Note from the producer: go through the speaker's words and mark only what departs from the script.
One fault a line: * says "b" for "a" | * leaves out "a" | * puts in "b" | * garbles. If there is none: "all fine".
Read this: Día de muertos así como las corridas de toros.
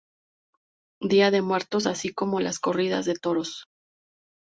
all fine